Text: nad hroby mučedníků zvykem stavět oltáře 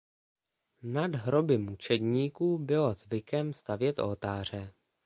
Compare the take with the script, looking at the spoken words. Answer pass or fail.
fail